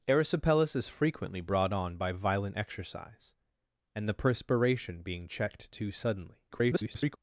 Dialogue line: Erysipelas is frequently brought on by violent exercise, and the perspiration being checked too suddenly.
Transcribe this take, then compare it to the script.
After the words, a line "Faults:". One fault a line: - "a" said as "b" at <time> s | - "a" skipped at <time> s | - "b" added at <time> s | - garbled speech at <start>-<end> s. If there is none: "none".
Erysipelas is frequently brought on by violent exercise, and the perspiration being checked too suddenly. [garbled]
Faults:
- garbled speech at 6.5-7.2 s